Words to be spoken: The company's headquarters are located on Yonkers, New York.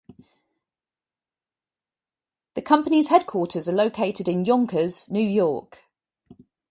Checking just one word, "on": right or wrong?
wrong